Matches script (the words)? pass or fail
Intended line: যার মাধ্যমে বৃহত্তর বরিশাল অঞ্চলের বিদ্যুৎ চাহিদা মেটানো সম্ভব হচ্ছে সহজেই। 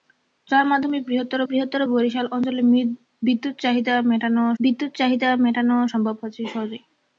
fail